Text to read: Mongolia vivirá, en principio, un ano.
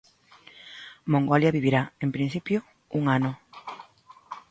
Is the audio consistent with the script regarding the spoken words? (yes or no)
yes